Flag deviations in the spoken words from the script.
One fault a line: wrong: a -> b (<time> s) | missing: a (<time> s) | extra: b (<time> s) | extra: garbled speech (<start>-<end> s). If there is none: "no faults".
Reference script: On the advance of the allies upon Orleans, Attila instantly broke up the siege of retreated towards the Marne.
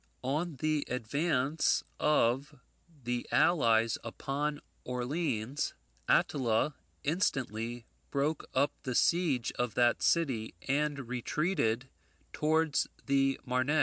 extra: that city and (9.8 s)